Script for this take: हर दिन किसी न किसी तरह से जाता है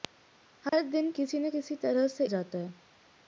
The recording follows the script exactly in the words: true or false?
true